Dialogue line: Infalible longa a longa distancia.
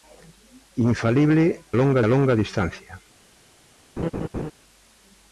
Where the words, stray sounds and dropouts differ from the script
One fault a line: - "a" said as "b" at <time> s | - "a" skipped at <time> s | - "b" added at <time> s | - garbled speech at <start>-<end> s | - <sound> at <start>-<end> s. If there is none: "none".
- laugh at 4.0-4.5 s